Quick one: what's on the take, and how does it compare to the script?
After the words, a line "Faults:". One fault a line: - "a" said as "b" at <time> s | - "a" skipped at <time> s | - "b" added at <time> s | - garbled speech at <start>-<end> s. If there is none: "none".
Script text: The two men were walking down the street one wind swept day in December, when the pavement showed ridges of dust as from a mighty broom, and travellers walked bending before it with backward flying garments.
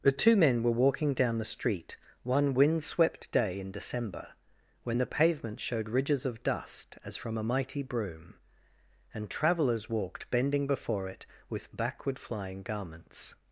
The two men were walking down the street one wind swept day in December, when the pavement showed ridges of dust as from a mighty broom, and travellers walked bending before it with backward flying garments.
Faults:
none